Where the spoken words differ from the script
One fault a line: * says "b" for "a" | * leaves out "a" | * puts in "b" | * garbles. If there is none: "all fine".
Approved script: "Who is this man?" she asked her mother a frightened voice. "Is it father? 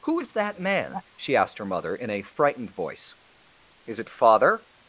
* says "that" for "this"
* puts in "in"